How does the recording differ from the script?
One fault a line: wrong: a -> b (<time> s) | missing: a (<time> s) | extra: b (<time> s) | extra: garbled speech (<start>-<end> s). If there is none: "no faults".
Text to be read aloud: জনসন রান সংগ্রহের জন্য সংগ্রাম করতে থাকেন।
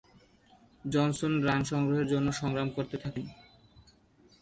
no faults